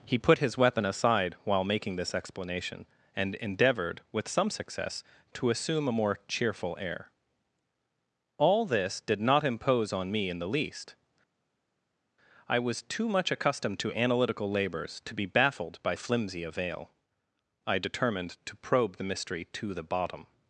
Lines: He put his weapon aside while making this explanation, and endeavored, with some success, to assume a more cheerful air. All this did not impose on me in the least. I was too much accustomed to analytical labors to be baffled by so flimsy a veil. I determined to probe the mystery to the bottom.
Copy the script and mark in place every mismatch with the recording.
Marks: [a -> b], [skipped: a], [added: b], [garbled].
He put his weapon aside while making this explanation, and endeavored, with some success, to assume a more cheerful air. All this did not impose on me in the least. I was too much accustomed to analytical labors to be baffled by [skipped: so] flimsy a veil. I determined to probe the mystery to the bottom.